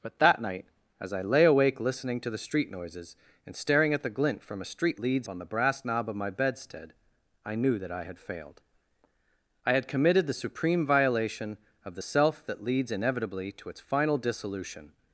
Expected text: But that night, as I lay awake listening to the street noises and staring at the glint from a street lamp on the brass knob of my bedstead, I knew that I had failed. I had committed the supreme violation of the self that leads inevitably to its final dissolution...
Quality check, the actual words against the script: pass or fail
fail